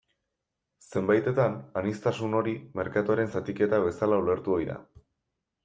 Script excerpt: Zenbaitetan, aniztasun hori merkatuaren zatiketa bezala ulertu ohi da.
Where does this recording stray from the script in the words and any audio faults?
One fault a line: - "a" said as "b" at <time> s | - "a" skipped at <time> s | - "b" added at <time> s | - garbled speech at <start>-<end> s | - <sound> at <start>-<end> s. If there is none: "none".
none